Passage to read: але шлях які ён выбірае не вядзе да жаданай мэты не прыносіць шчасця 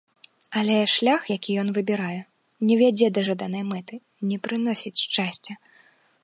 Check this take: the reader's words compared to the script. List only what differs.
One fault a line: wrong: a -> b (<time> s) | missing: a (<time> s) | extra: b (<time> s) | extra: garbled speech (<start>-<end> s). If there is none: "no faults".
no faults